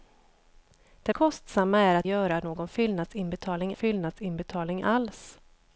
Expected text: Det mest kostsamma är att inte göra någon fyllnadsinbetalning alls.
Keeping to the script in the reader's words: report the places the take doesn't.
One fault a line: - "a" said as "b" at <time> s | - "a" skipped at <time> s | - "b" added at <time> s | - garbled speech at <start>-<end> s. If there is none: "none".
- "mest" skipped at 1.1 s
- "inte" skipped at 2.1 s
- "fyllnadsinbetalning" added at 3.7 s